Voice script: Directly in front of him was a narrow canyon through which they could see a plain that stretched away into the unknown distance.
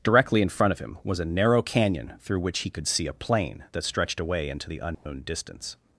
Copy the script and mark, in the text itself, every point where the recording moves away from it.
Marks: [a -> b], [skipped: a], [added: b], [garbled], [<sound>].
Directly in front of him was a narrow canyon through which [they -> he] could see a plain that stretched away into the unknown [dropout] distance.